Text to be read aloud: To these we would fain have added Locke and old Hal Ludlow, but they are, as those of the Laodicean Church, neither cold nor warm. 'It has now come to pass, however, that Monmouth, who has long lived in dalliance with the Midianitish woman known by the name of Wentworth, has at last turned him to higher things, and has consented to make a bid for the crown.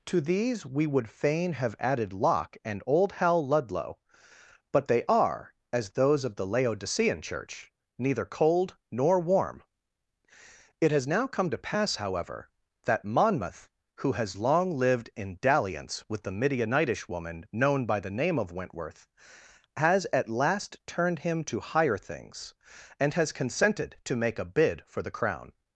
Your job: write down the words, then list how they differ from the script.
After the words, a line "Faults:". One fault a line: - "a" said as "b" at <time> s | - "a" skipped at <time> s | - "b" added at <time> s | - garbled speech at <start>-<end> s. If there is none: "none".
To these we would fain have added Locke and old Hal Ludlow, but they are, as those of the Laodicean Church, neither cold nor warm. 'It has now come to pass, however, that Monmouth, who has long lived in dalliance with the Midianitish woman known by the name of Wentworth, has at last turned him to higher things, and has consented to make a bid for the crown.
Faults:
none